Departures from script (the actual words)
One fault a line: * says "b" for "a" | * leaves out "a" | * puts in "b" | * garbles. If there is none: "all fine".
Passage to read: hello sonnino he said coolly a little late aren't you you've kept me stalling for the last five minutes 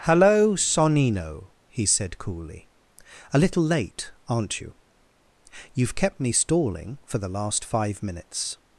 all fine